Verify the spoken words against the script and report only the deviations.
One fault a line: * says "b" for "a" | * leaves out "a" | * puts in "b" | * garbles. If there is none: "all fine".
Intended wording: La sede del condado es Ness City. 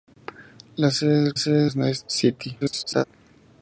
* says "sede" for "condado"
* garbles